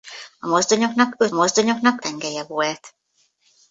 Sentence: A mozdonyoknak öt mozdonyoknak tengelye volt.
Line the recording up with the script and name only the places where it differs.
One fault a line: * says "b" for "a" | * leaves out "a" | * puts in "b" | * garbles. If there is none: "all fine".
all fine